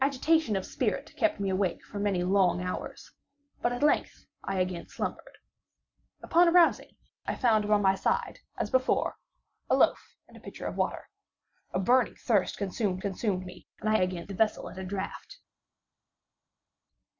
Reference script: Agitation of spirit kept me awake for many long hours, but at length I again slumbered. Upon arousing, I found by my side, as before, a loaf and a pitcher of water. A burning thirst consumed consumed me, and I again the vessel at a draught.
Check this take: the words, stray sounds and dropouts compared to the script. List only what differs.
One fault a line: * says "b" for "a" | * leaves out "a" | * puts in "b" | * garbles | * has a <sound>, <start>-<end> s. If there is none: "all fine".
all fine